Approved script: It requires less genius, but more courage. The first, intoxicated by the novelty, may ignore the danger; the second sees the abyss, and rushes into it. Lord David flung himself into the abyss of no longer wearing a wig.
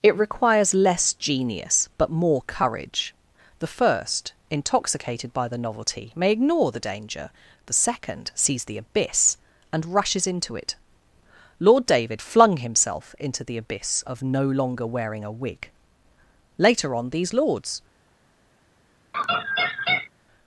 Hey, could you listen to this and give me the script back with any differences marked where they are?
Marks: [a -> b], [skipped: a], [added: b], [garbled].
It requires less genius, but more courage. The first, intoxicated by the novelty, may ignore the danger; the second sees the abyss, and rushes into it. Lord David flung himself into the abyss of no longer wearing a wig. [added: Later on these lords]